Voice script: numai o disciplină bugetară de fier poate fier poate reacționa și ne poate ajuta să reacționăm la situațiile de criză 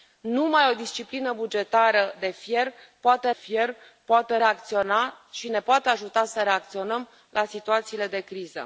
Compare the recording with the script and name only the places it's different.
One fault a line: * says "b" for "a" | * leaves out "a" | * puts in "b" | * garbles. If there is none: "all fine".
all fine